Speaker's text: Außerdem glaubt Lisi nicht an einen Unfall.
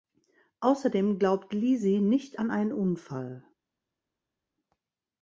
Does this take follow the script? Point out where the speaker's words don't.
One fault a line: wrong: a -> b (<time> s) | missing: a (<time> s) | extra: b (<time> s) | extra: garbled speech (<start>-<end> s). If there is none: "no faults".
no faults